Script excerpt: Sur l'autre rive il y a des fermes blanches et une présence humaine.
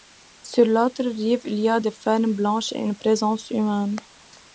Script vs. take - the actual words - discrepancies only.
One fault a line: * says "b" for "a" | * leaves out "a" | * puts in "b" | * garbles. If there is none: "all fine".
all fine